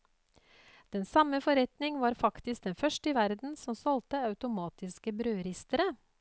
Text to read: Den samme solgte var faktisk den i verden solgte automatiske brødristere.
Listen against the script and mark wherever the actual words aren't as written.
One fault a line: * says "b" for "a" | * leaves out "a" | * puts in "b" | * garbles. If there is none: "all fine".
* says "forretning" for "solgte"
* puts in "første"
* puts in "som"